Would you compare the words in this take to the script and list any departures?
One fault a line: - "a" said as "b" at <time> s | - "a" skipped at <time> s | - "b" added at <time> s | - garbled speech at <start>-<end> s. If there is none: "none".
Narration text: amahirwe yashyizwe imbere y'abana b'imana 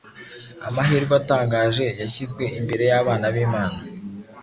- "atangaje" added at 1.2 s